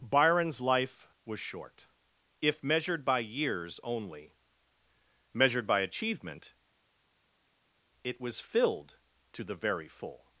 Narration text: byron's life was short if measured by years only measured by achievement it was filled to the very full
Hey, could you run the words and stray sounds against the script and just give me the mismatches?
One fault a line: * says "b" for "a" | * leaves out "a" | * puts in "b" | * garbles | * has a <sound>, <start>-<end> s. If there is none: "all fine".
all fine